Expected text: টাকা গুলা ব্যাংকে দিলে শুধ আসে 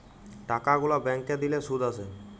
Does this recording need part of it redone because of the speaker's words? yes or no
no